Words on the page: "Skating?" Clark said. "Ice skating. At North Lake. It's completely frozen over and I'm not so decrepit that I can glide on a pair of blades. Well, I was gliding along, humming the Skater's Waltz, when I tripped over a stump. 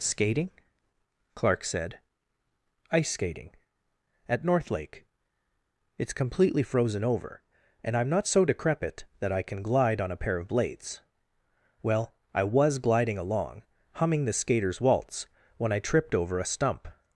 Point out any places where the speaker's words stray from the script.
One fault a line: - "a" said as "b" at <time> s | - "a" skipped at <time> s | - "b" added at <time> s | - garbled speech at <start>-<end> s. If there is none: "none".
none